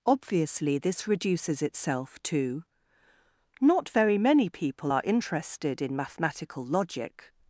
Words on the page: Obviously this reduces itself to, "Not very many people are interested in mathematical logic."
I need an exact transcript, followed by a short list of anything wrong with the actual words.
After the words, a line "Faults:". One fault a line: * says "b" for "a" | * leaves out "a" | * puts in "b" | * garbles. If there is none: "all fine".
Obviously this reduces itself to, "Not very many people are interested in mathematical logic."
Faults:
all fine